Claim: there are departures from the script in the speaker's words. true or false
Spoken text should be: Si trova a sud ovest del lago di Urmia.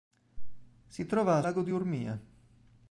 true